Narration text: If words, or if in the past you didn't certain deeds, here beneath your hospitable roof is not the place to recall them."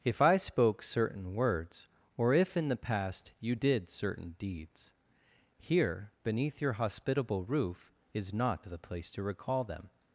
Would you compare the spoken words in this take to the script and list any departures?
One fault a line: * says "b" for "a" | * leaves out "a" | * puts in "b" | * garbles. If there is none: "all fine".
* puts in "I spoke certain"
* says "did" for "didn't"